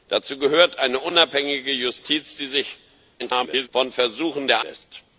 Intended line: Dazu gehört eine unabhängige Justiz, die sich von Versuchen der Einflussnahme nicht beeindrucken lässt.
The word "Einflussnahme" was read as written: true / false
false